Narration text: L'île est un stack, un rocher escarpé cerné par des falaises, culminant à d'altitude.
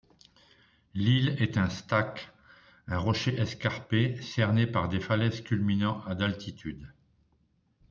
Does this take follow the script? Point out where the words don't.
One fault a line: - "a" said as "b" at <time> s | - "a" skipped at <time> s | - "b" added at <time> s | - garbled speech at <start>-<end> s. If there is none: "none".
none